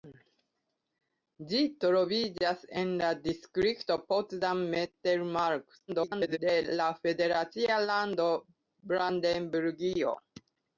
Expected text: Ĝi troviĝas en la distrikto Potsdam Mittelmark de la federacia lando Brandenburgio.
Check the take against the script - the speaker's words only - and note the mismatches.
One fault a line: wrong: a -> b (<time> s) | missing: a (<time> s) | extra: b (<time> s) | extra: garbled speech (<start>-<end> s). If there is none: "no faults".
extra: garbled speech (5.9-6.4 s)